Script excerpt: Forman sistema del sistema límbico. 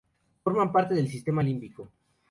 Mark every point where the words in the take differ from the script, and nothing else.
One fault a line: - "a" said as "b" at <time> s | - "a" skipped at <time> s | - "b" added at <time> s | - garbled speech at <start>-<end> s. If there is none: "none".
- "sistema" said as "parte" at 0.7 s